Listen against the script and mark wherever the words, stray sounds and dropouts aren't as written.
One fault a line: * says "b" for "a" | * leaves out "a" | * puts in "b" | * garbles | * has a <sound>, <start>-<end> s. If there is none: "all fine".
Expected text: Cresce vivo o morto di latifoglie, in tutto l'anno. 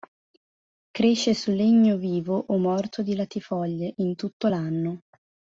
* puts in "su legno"